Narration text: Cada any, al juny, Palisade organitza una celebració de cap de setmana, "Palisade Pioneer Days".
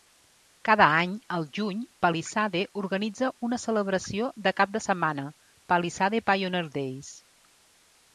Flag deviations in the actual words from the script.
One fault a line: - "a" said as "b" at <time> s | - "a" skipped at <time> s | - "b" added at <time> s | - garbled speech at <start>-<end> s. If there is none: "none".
none